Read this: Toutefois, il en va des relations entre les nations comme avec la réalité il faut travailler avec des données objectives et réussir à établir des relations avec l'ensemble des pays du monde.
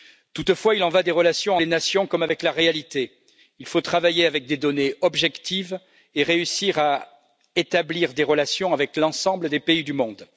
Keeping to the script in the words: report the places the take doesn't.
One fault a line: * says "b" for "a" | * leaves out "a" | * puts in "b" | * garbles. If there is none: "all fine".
* leaves out "entre"